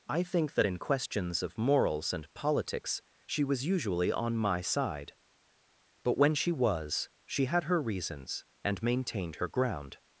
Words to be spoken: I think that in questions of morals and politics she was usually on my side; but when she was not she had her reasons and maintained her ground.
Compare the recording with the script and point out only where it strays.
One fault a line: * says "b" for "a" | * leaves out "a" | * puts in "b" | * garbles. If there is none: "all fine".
* leaves out "not"